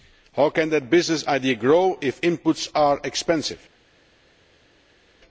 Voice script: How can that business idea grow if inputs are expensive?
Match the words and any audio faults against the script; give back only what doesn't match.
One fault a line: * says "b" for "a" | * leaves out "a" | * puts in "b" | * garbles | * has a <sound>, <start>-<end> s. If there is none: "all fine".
all fine